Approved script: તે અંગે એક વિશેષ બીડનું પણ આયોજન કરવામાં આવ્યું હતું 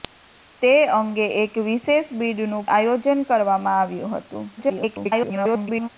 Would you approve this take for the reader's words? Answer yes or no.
no